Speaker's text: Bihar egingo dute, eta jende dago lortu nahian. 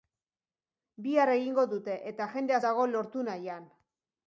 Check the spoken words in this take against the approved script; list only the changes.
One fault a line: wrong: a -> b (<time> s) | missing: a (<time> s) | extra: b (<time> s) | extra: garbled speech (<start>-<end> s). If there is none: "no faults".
no faults